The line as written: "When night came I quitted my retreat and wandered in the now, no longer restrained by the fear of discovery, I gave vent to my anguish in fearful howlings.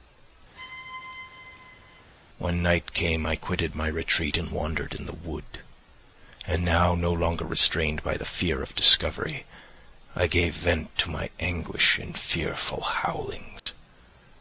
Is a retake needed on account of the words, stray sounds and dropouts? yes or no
yes